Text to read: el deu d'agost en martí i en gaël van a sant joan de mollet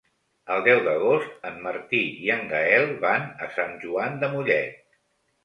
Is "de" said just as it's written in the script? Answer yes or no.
yes